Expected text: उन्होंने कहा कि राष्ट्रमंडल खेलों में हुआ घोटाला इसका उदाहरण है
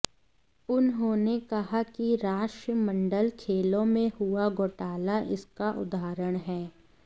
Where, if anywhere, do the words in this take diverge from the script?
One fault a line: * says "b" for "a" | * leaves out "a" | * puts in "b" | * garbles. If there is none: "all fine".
all fine